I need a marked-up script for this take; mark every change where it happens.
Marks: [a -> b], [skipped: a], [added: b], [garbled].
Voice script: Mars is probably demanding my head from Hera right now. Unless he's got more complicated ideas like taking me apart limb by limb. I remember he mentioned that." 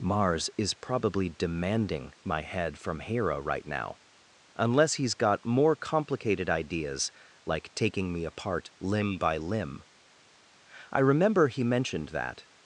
Mars is probably demanding my head from Hera right now. Unless he's got more complicated ideas like taking me apart limb by limb. I remember he mentioned that."